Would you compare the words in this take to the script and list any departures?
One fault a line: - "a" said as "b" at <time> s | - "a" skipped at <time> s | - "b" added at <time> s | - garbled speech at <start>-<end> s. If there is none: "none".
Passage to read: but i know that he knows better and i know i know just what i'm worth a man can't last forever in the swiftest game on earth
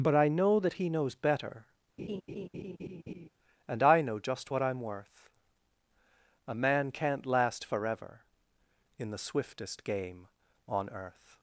- "i know" skipped at 4.2 s